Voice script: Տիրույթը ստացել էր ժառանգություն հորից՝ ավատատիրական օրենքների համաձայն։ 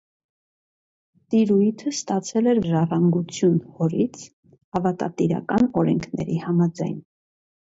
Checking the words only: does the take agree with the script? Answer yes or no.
yes